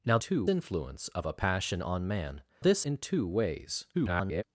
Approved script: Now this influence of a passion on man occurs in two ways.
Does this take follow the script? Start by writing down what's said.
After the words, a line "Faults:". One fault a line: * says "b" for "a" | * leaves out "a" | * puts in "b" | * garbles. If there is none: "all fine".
Now two influence of a passion on man this in two ways. [garbled]
Faults:
* says "two" for "this"
* says "this" for "occurs"
* garbles